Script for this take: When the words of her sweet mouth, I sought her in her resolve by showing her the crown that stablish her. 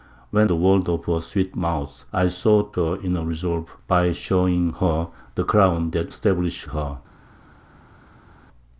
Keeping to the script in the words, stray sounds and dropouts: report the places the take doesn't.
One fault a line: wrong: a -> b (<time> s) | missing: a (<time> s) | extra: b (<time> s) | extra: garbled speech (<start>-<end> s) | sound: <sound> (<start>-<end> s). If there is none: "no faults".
no faults